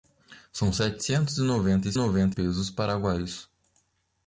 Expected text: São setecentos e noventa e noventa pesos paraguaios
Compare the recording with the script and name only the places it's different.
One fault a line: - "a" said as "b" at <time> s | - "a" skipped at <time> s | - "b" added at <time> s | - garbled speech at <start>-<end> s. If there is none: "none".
none